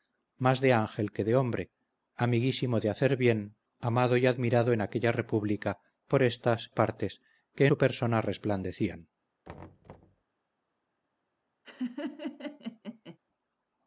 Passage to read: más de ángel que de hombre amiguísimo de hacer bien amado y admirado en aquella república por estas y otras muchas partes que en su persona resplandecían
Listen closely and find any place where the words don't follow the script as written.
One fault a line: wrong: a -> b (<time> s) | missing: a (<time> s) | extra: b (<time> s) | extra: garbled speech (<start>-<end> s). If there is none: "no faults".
missing: y otras muchas (6.7 s)
missing: en (7.7 s)